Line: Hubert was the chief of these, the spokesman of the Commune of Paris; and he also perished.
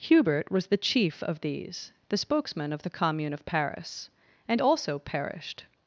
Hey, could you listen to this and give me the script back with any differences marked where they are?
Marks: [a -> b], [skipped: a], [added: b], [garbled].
Hubert was the chief of these, the spokesman of the Commune of Paris; and [skipped: he] also perished.